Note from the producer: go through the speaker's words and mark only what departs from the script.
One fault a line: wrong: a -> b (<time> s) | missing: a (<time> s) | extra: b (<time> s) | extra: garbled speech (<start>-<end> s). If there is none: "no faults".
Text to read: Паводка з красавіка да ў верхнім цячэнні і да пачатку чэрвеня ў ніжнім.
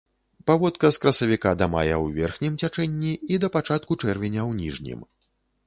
extra: мая (1.7 s)